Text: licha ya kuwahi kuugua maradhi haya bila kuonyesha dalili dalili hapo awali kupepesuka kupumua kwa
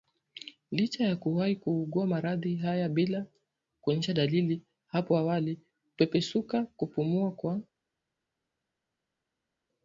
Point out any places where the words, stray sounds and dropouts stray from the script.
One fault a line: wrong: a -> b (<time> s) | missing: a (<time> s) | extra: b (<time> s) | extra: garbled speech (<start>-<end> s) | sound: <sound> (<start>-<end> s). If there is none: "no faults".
missing: dalili (4.6 s)